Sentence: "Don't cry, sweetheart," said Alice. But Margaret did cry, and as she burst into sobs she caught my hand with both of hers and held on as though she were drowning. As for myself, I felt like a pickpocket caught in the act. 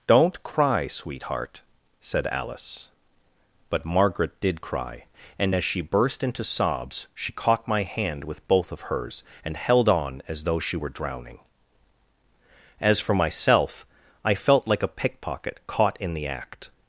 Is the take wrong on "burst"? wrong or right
right